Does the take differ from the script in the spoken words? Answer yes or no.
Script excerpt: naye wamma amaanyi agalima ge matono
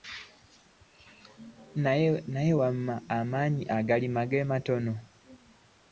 no